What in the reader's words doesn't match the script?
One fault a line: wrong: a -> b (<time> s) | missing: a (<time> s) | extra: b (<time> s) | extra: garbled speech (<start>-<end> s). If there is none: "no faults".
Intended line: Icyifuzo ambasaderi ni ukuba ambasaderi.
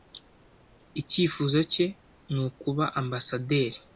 wrong: ambasaderi -> cye (1.7 s)